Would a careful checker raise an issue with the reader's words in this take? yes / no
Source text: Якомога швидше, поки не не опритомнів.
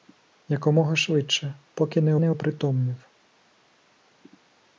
no